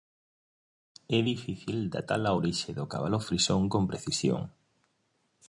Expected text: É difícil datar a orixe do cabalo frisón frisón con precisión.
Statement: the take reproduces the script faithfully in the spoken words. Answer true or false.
false